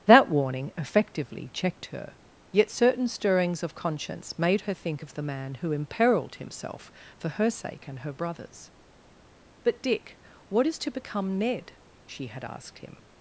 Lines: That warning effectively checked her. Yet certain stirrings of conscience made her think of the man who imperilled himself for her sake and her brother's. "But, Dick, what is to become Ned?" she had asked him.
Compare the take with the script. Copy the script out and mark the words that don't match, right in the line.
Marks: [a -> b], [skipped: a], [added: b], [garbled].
That warning effectively checked her. Yet certain stirrings of conscience made her think of the man who imperilled himself for her sake and her brother's. "But, Dick, what is to become Ned?" she had asked him.